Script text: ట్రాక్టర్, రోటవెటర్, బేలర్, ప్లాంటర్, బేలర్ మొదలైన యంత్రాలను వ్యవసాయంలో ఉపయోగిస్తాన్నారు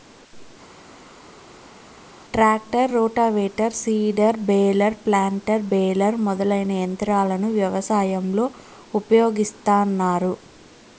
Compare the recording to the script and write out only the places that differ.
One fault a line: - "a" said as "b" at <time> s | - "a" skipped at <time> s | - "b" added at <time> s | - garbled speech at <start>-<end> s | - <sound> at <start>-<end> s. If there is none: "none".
- "సీడర్" added at 3.7 s